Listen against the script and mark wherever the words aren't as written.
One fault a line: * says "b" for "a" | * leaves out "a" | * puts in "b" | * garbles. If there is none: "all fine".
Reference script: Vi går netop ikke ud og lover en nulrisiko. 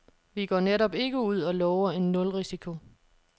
all fine